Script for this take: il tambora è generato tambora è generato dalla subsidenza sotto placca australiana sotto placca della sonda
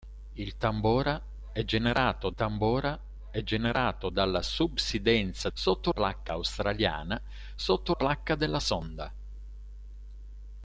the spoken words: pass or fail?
pass